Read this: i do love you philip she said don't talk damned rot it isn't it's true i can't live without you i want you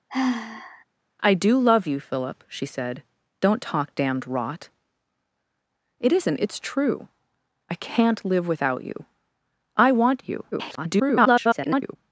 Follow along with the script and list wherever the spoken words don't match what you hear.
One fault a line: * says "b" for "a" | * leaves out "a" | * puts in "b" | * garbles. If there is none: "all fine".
* garbles